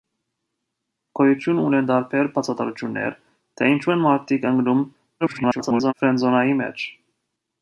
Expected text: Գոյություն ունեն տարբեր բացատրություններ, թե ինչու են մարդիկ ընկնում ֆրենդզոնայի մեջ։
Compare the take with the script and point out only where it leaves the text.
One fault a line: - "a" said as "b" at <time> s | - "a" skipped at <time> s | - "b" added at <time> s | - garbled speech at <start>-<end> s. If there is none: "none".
- garbled speech at 5.2-5.9 s